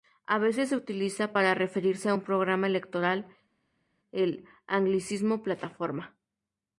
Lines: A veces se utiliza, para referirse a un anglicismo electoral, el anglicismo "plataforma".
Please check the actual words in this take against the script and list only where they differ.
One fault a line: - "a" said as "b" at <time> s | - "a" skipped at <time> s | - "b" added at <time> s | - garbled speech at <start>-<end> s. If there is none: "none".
- "anglicismo" said as "programa" at 2.2 s